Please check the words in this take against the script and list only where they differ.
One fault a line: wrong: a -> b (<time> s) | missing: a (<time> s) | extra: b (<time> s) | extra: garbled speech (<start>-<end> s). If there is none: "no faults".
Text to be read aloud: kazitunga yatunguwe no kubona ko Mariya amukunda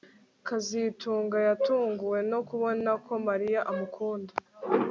no faults